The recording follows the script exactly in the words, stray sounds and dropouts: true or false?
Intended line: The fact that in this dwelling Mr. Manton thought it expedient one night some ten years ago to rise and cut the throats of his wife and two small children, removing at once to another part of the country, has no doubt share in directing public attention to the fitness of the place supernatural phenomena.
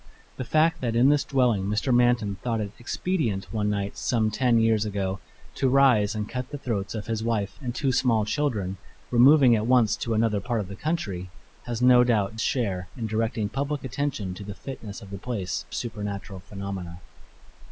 true